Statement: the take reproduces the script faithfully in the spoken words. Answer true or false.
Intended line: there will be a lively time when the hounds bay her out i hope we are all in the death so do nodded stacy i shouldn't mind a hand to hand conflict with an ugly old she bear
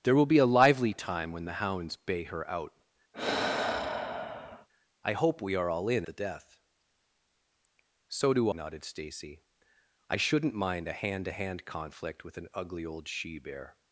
true